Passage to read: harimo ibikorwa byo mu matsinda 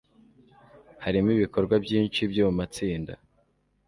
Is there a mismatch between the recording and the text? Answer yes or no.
yes